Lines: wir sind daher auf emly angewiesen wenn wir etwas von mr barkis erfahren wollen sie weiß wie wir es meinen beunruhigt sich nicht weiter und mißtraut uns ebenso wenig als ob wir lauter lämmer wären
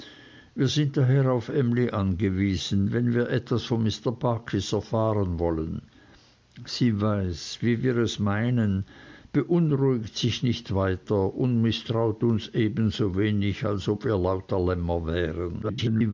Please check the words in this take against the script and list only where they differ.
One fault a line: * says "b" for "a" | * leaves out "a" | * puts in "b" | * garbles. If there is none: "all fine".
* garbles